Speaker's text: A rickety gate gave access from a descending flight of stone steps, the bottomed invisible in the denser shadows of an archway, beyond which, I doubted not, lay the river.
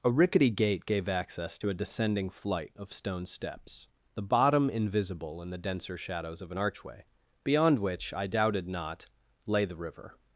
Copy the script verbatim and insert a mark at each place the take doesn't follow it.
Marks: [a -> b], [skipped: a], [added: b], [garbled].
A rickety gate gave access [from -> to] a descending flight of stone steps, the [bottomed -> bottom] invisible in the denser shadows of an archway, beyond which, I doubted not, lay the river.